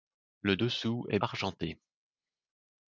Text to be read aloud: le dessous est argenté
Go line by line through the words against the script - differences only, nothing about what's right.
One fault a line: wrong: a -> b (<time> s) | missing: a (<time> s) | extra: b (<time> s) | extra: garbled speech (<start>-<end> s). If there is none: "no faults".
no faults